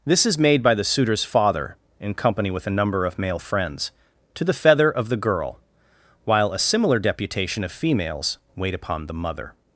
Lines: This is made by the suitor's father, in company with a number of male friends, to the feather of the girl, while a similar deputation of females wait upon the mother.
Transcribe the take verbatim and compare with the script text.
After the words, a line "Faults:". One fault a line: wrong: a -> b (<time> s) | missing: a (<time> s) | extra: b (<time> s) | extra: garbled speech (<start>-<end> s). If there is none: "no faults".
This is made by the suitor's father, in company with a number of male friends, to the feather of the girl, while a similar deputation of females wait upon the mother.
Faults:
no faults